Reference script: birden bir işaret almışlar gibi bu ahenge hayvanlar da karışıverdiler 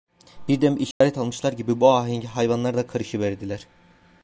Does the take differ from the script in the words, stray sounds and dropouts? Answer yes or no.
yes